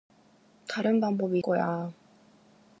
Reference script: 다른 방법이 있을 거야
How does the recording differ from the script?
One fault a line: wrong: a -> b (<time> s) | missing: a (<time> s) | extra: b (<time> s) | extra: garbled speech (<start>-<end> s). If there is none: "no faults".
missing: 있을 (1.4 s)